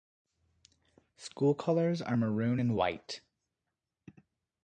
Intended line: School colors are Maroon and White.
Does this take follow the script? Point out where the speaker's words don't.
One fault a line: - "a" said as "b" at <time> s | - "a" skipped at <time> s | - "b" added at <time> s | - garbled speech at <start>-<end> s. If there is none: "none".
none